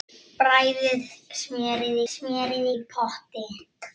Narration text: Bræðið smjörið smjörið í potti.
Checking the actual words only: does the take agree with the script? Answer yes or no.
yes